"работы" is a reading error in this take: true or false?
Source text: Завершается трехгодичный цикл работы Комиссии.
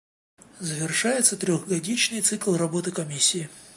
false